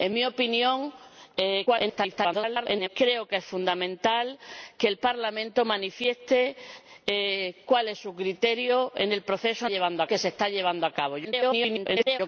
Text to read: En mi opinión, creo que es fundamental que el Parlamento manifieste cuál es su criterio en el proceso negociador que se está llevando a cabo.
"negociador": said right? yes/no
no